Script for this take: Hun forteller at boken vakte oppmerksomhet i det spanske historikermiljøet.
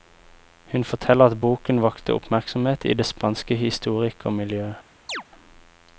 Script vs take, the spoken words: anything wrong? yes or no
no